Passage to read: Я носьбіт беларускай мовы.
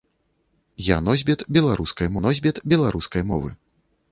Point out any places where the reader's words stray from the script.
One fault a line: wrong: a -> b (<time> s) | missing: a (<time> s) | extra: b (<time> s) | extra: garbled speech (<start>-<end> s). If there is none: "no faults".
extra: носьбіт беларускай (2.3 s)